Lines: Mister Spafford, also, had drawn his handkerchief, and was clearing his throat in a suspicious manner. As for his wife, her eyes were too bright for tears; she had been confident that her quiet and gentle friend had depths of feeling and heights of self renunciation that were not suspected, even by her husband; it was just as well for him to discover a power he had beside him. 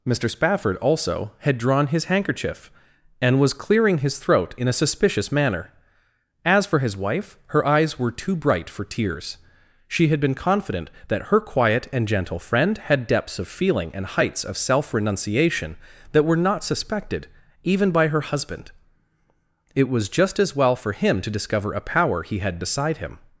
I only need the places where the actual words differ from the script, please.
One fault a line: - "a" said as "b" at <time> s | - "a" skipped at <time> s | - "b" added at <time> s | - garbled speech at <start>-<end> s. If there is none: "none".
none